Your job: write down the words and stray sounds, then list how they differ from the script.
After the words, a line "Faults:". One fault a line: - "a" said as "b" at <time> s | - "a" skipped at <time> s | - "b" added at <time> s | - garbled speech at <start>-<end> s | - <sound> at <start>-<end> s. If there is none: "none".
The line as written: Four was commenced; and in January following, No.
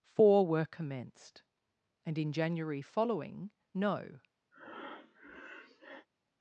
Four were commenced; and in January following, No.
Faults:
- "was" said as "were" at 0.5 s
- breath at 4.5-6.1 s